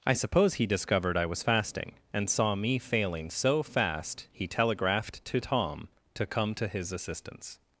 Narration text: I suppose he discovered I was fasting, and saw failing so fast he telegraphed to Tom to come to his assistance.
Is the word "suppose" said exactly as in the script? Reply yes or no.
yes